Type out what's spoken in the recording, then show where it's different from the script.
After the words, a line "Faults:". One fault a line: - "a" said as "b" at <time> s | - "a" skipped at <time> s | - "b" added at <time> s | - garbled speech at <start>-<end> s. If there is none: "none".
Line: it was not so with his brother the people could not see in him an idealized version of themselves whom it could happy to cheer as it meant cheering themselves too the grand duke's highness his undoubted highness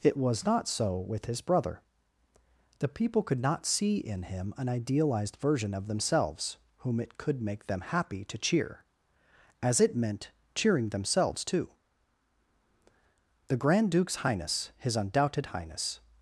it was not so with his brother the people could not see in him an idealized version of themselves whom it could make them happy to cheer as it meant cheering themselves too the grand duke's highness his undoubted highness
Faults:
- "make them" added at 7.4 s